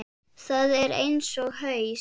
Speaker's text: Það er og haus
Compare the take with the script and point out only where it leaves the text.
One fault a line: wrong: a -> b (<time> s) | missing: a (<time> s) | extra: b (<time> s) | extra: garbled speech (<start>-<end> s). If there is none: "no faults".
extra: eins (1.0 s)